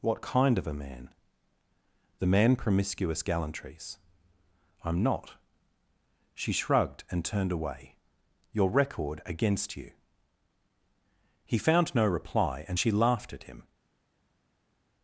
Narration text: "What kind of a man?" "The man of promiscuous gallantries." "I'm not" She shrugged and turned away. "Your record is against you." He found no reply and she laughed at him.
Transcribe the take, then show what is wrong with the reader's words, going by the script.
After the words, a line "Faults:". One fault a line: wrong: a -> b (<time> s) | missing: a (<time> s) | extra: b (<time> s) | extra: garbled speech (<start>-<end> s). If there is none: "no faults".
"What kind of a man?" "The man promiscuous gallantries." "I'm not" She shrugged and turned away. "Your record against you." He found no reply and she laughed at him.
Faults:
missing: of (2.5 s)
missing: is (9.2 s)